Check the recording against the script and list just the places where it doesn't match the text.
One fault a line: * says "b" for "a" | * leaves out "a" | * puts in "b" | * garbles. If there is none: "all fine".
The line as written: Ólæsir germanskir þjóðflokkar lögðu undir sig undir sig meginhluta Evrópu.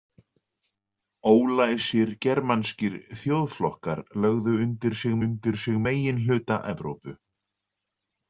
all fine